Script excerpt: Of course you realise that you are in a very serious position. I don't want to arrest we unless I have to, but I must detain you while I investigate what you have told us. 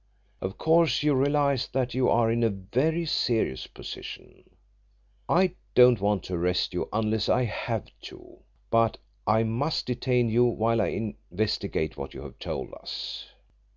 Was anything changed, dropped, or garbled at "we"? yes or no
yes